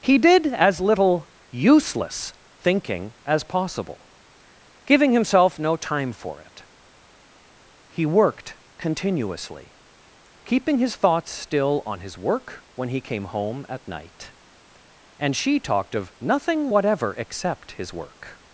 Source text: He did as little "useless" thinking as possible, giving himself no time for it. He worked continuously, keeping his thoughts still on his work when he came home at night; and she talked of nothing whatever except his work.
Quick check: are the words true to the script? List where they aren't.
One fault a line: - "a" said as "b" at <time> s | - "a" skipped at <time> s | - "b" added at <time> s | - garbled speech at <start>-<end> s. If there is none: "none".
none